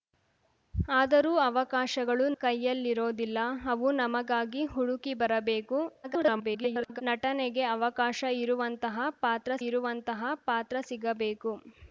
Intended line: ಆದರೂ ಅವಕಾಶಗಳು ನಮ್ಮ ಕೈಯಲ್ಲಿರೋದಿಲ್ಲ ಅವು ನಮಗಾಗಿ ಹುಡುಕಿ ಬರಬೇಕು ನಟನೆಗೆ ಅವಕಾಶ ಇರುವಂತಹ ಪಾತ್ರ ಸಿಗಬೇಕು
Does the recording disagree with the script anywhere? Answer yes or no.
yes